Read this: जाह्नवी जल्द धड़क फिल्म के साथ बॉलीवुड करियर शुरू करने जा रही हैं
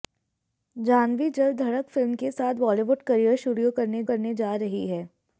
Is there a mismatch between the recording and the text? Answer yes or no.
yes